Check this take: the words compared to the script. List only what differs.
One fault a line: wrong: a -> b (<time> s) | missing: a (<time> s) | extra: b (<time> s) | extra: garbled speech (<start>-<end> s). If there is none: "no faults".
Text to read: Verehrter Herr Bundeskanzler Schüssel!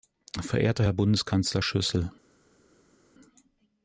no faults